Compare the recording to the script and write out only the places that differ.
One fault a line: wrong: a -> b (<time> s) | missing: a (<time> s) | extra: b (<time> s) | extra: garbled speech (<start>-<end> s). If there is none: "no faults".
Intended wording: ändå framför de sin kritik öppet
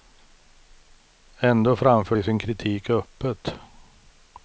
no faults